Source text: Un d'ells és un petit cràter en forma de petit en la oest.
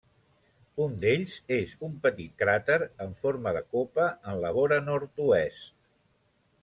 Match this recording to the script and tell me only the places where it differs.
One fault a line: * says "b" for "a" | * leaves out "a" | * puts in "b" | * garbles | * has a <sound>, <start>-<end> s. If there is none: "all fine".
* says "copa" for "petit"
* puts in "vora nord"